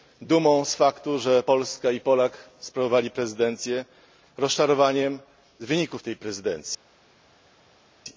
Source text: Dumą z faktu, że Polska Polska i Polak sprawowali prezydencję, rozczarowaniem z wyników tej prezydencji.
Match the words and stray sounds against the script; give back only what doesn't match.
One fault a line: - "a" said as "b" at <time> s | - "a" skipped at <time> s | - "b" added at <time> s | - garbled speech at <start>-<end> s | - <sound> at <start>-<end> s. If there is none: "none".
- "Polska" skipped at 1.9 s